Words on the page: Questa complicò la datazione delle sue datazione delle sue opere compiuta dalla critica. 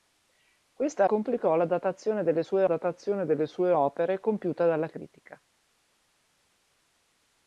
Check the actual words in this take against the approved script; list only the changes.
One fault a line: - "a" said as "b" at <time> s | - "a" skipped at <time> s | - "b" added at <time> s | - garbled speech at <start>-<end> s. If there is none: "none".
none